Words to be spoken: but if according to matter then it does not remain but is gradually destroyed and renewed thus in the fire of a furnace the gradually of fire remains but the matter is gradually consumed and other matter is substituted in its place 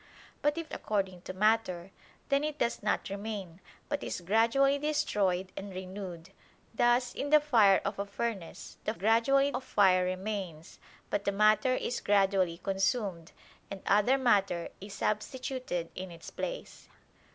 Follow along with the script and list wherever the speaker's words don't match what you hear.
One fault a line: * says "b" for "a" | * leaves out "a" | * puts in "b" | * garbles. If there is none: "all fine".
all fine